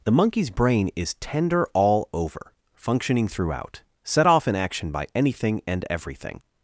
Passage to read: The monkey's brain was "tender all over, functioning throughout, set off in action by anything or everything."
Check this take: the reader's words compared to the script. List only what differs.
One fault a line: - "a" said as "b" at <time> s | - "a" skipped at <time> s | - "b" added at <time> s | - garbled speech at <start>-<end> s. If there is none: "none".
- "was" said as "is" at 0.9 s
- "or" said as "and" at 5.7 s